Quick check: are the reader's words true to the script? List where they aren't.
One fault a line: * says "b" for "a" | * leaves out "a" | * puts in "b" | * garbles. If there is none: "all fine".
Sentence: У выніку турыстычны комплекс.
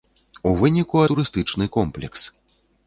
all fine